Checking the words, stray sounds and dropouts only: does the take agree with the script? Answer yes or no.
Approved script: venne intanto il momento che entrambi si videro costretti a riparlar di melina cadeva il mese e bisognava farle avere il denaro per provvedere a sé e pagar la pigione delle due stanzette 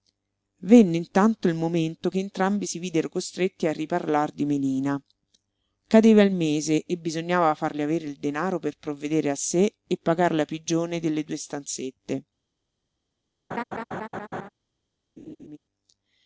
no